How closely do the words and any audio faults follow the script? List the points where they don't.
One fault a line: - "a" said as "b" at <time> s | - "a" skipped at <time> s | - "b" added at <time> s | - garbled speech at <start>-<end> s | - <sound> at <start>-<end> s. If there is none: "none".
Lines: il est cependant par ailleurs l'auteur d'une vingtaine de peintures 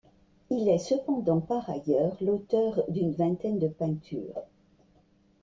none